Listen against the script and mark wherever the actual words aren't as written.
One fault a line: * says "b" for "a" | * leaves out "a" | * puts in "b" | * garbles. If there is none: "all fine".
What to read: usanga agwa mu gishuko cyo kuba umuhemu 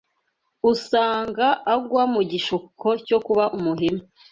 all fine